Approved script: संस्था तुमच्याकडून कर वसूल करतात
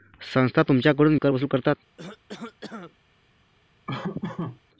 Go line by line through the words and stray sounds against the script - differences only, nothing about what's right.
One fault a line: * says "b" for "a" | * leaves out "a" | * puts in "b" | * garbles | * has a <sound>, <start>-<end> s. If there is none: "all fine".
* has a cough, 2.0-3.0 s
* has a laugh, 3.9-4.6 s